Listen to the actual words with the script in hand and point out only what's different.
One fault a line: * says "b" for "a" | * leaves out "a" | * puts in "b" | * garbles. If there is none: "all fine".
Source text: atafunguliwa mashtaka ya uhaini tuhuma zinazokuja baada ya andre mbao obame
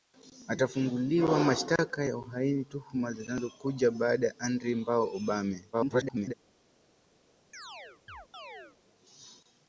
* garbles